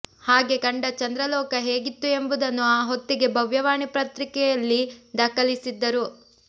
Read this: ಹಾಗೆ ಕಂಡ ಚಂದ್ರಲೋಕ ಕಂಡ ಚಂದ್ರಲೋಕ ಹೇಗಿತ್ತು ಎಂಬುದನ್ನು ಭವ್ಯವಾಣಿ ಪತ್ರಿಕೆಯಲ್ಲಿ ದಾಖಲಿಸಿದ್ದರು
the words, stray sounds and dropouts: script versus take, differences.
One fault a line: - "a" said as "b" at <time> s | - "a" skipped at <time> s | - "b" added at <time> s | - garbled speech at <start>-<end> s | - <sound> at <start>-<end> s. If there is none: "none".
- "ಕಂಡ ಚಂದ್ರಲೋಕ ಹೇಗಿತ್ತು ಎಂಬುದನ್ನು" said as "ಹೇಗಿತ್ತು ಎಂಬುದನ್ನು ಆ ಹೊತ್ತಿಗೆ" at 1.6 s